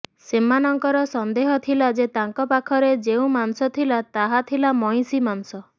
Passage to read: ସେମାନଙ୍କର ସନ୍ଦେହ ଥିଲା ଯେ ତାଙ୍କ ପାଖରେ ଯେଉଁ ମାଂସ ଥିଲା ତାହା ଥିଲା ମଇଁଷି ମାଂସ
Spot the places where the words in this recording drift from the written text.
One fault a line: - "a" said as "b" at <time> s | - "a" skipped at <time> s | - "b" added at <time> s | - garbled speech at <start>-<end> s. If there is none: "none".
none